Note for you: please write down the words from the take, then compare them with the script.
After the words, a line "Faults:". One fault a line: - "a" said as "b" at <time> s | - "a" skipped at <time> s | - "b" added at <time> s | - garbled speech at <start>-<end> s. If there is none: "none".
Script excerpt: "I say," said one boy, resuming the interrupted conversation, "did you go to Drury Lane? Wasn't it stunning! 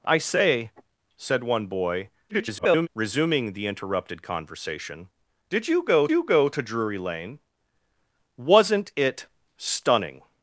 "I say," said one boy, [garbled] resuming the interrupted conversation, "did you go you go to Drury Lane? Wasn't it stunning!
Faults:
- garbled speech at 2.3-2.9 s
- "you go" added at 6.1 s